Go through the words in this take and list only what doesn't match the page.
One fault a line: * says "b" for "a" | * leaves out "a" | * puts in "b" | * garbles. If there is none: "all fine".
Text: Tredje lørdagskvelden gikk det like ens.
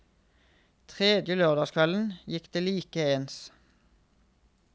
all fine